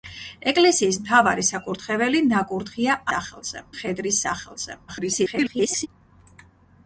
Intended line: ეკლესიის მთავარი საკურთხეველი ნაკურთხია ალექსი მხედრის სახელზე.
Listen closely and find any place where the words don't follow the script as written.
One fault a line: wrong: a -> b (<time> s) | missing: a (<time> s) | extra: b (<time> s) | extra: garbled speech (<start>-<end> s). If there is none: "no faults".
wrong: ალექსი -> სახელზე (3.1 s)
extra: garbled speech (4.9-5.9 s)